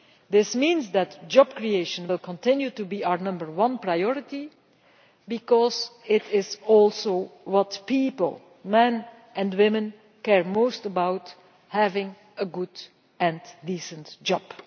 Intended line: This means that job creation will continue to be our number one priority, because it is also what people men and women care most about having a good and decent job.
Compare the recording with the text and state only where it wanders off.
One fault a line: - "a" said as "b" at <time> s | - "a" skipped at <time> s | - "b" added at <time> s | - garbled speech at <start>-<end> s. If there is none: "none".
none